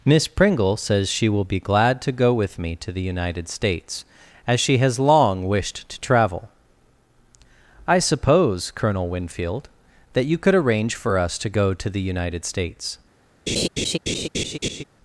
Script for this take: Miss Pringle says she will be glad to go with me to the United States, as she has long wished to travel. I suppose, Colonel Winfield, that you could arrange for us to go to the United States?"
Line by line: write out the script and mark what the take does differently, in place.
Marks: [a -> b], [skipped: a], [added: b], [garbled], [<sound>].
Miss Pringle says she will be glad to go with me to the United States, as she has long wished to travel. I suppose, Colonel Winfield, that you could arrange for us to go to the United States?" [laugh]